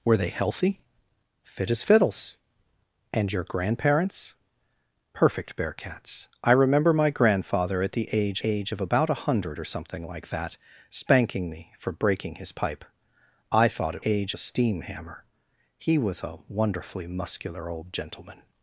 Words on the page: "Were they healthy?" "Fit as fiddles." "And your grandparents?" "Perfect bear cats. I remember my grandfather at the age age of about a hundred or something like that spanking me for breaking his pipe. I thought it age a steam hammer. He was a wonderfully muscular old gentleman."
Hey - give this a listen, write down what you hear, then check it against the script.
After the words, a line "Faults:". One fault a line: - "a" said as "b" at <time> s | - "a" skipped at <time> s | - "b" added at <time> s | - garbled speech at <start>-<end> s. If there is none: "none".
"Were they healthy?" "Fit as fiddles." "And your grandparents?" "Perfect bear cats. I remember my grandfather at the age age of about a hundred or something like that spanking me for breaking his pipe. I thought it age a steam hammer. He was a wonderfully muscular old gentleman."
Faults:
none